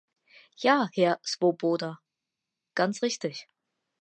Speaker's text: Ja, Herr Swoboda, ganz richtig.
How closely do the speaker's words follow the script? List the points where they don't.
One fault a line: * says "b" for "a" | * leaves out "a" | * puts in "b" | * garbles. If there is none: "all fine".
all fine